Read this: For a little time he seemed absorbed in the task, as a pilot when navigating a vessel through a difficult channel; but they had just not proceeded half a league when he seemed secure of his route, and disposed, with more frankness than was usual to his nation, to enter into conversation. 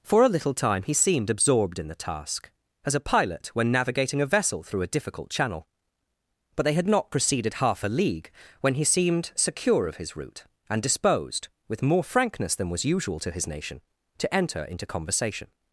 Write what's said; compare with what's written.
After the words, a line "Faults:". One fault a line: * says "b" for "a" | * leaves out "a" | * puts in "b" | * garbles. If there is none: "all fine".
For a little time he seemed absorbed in the task, as a pilot when navigating a vessel through a difficult channel; but they had not proceeded half a league when he seemed secure of his route, and disposed, with more frankness than was usual to his nation, to enter into conversation.
Faults:
* leaves out "just"